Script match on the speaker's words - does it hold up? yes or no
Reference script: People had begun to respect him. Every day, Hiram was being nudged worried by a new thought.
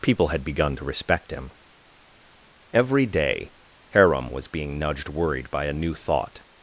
yes